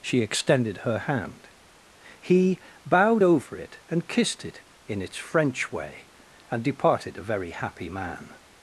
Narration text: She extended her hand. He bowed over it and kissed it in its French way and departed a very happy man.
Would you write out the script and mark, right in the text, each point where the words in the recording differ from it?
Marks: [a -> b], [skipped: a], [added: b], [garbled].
She extended her hand. He bowed over it and kissed it in its French way and departed a very happy man.